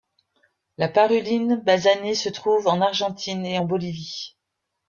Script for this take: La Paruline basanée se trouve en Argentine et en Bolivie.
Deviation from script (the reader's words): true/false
false